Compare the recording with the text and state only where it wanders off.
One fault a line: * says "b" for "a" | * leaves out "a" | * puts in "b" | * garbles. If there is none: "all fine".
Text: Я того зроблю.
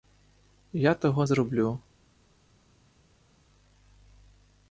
all fine